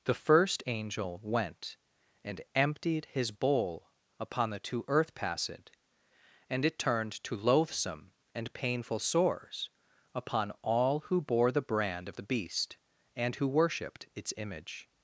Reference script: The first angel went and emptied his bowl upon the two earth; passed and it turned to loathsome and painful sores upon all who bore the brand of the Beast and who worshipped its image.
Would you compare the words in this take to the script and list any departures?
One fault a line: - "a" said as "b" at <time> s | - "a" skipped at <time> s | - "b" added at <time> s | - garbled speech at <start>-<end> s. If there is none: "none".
none